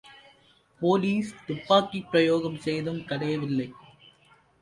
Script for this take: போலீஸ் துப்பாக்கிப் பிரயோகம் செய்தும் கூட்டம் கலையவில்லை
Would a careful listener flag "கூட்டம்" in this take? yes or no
yes